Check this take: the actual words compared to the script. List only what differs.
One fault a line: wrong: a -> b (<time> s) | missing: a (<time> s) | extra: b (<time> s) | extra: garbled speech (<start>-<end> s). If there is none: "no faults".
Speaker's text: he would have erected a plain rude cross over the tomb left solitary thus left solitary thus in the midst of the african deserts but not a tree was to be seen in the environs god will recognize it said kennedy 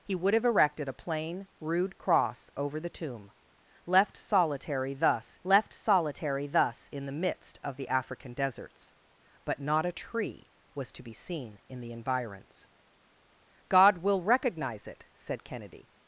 no faults